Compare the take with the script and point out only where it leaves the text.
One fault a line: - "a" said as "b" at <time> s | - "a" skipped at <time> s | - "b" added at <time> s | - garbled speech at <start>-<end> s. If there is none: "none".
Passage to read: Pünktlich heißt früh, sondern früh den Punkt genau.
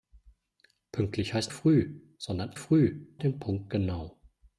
none